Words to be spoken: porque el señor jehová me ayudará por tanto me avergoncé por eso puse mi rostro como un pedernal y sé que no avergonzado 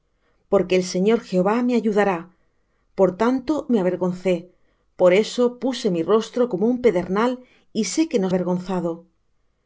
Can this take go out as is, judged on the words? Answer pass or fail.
pass